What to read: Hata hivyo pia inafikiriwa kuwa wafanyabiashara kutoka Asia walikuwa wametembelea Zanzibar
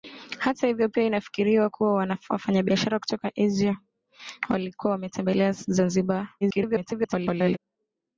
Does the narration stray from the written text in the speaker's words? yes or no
yes